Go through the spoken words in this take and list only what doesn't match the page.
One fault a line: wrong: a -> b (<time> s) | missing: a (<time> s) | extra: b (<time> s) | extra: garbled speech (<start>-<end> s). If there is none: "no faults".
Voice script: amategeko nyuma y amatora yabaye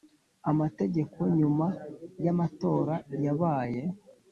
no faults